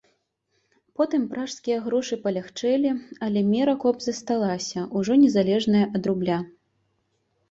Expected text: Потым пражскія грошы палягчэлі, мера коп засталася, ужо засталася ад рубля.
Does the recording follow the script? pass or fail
fail